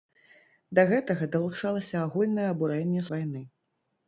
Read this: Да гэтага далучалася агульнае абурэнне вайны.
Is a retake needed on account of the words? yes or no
no